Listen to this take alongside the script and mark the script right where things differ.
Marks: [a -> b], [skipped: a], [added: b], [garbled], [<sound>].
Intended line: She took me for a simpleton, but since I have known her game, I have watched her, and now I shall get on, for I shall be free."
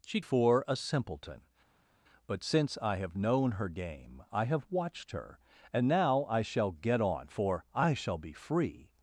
She [skipped: took me] for a simpleton, but since I have known her game, I have watched her, and now I shall get on, for I shall be free."